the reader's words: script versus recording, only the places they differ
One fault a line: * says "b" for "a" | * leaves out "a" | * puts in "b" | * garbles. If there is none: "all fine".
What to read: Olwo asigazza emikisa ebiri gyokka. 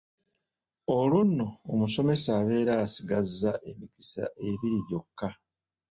* puts in "nno omusomesa abeera"